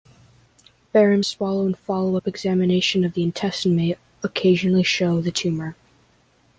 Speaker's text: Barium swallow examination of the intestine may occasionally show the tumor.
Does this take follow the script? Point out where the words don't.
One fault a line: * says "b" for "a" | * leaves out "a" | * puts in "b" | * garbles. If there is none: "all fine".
* puts in "and follow up"